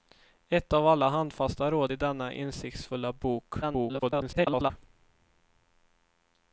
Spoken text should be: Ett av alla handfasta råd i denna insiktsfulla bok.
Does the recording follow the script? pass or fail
fail